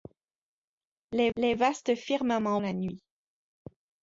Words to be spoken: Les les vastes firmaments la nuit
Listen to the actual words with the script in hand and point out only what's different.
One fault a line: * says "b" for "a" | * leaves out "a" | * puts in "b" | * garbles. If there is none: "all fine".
all fine